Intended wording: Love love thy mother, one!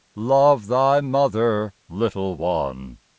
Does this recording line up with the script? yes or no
no